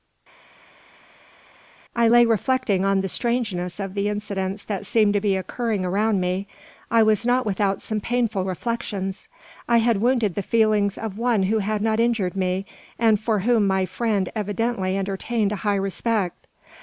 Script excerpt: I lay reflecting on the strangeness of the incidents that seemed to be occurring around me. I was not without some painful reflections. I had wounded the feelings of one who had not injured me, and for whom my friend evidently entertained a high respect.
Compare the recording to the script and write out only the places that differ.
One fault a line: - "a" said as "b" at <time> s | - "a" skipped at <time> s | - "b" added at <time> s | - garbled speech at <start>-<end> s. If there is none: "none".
none